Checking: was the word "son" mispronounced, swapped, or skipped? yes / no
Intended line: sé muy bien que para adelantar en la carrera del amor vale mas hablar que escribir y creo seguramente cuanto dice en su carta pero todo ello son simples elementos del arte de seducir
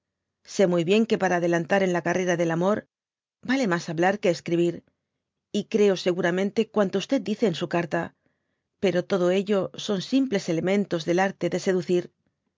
no